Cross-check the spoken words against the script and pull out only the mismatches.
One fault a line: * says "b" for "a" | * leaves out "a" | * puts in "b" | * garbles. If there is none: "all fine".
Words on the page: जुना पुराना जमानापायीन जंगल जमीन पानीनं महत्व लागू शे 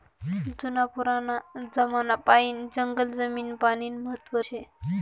* leaves out "लागू"